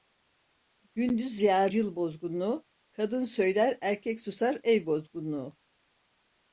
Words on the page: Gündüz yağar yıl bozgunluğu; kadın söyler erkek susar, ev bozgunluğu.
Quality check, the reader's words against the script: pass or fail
pass